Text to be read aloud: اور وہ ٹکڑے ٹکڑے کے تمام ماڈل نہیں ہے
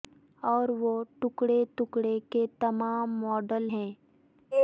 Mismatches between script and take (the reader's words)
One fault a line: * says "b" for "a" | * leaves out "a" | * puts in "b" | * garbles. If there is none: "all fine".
* leaves out "نہیں"